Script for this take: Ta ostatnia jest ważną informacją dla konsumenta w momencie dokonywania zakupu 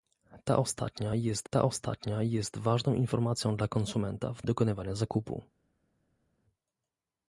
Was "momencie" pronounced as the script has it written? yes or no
no